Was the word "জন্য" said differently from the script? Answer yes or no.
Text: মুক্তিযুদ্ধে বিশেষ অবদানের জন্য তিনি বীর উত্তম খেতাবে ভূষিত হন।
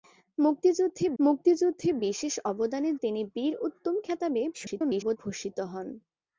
yes